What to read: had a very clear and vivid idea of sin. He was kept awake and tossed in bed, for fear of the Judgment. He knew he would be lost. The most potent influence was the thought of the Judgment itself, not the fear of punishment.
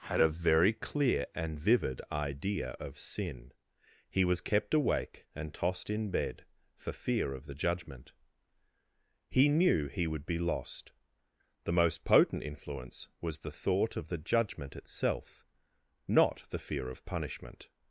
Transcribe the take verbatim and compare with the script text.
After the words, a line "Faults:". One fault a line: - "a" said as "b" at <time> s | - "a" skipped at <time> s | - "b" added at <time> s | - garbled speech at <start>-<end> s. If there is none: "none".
had a very clear and vivid idea of sin. He was kept awake and tossed in bed, for fear of the Judgment. He knew he would be lost. The most potent influence was the thought of the Judgment itself, not the fear of punishment.
Faults:
none